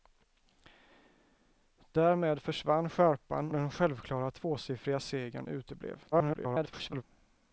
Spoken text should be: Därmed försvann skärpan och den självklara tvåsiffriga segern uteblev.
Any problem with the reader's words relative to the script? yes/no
yes